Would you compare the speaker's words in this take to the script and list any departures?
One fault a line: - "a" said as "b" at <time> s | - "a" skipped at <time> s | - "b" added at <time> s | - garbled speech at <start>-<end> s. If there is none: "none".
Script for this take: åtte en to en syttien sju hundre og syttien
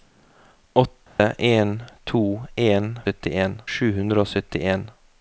none